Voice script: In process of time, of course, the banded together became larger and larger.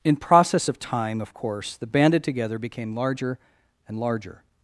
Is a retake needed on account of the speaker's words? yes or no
no